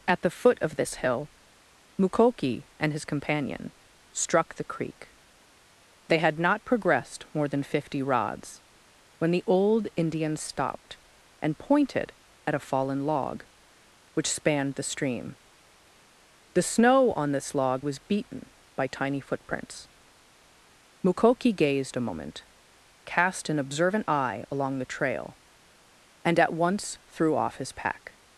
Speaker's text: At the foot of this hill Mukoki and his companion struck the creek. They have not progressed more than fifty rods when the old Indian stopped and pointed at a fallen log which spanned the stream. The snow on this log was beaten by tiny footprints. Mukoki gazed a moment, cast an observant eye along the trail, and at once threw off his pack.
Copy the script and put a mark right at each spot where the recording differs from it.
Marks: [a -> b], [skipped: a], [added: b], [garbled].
At the foot of this hill Mukoki and his companion struck the creek. They [have -> had] not progressed more than fifty rods when the old Indian stopped and pointed at a fallen log which spanned the stream. The snow on this log was beaten by tiny footprints. Mukoki gazed a moment, cast an observant eye along the trail, and at once threw off his pack.